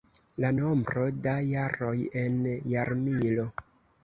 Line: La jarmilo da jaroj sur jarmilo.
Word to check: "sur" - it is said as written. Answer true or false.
false